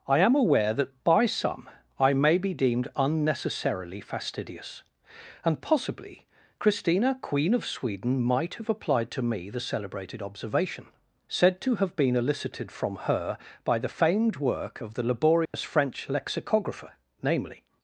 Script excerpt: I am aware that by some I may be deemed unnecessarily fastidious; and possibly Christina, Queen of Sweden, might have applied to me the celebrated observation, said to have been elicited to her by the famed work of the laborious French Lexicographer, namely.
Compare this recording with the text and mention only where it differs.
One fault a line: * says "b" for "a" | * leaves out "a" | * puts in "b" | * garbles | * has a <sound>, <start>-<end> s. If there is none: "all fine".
* says "from" for "to"
* has a dropout, 15.5-15.5 s